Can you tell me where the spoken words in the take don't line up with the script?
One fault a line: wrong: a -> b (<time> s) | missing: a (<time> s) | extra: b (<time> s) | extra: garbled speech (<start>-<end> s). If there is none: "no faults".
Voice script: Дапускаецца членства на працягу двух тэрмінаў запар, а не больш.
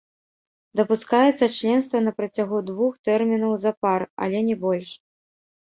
wrong: а -> але (4.2 s)